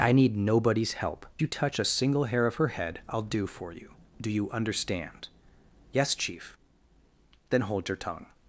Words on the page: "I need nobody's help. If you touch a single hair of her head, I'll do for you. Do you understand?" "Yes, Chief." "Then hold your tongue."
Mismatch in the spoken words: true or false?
true